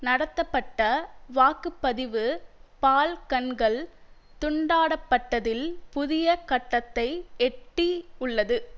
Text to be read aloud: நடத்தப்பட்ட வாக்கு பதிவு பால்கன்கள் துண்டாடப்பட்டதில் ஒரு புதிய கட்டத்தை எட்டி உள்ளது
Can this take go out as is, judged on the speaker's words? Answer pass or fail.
fail